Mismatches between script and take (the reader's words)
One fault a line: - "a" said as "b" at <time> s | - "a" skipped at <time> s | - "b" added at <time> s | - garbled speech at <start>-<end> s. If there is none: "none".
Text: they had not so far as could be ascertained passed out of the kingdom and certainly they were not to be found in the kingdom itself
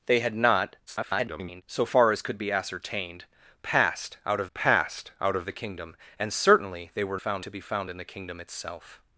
- garbled speech at 0.9-1.6 s
- "passed out of" added at 4.5 s
- "not" said as "found" at 7.1 s